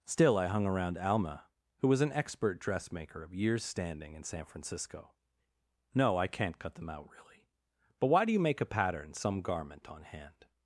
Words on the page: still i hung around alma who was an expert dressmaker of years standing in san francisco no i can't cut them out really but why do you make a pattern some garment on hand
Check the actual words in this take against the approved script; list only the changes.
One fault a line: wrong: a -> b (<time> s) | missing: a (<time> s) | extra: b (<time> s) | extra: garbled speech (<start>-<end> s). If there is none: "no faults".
no faults